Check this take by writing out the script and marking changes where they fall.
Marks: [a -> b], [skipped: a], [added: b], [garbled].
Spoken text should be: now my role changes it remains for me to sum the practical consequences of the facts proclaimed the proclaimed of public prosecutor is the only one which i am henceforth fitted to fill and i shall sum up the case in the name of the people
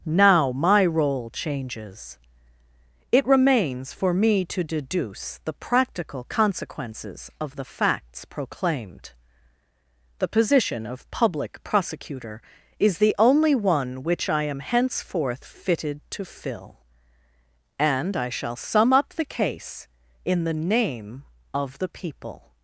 now my role changes it remains for me to [sum -> deduce] the practical consequences of the facts proclaimed the [proclaimed -> position] of public prosecutor is the only one which i am henceforth fitted to fill and i shall sum up the case in the name of the people